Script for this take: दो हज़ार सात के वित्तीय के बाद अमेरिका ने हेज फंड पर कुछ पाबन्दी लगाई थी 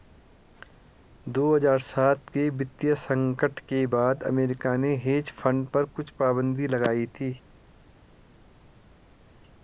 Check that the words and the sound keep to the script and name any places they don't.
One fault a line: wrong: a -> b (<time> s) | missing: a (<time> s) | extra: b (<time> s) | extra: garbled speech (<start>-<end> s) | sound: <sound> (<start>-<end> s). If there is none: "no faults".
extra: संकट (3.0 s)